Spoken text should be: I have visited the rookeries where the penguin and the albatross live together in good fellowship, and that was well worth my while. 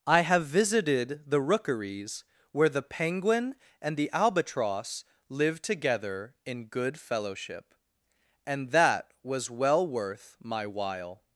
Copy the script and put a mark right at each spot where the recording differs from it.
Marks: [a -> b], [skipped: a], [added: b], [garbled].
I have visited the rookeries where the penguin and the albatross live together in good fellowship, and that was well worth my while.